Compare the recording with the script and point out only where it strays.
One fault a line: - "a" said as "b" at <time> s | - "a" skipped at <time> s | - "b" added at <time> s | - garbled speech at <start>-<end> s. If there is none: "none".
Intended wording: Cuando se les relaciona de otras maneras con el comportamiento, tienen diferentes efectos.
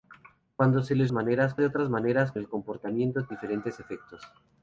- "relaciona" said as "maneras" at 1.1 s
- "con" skipped at 2.3 s
- "tienen" skipped at 3.3 s